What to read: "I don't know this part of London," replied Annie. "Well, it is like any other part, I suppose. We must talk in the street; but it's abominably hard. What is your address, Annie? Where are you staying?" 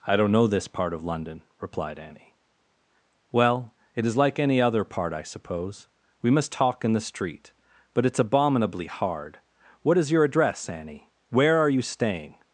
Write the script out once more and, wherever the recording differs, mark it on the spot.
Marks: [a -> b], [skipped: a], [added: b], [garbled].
"I don't know this part of London," replied Annie. "Well, it is like any other part, I suppose. We must talk in the street; but it's abominably hard. What is your address, Annie? Where are you staying?"